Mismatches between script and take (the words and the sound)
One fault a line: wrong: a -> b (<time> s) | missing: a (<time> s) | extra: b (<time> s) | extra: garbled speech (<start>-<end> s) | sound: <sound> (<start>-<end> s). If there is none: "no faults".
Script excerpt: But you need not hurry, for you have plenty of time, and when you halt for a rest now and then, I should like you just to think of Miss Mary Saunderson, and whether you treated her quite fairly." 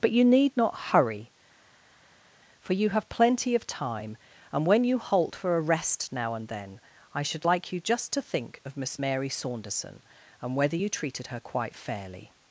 no faults